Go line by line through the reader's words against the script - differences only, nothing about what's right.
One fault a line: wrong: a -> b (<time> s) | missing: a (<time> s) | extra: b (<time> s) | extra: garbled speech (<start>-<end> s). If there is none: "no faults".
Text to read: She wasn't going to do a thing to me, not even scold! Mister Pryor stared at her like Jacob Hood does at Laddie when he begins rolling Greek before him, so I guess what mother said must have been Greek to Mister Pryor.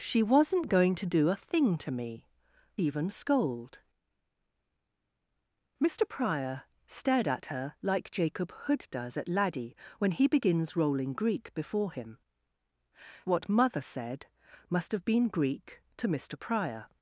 missing: not (2.3 s)
missing: so I guess (12.2 s)